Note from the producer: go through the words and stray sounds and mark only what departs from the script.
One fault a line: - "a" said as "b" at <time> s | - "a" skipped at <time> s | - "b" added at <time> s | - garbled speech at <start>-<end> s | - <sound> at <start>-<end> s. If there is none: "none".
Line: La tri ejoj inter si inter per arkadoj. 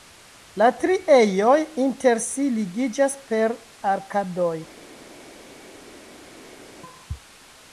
- "inter" said as "ligiĝas" at 2.6 s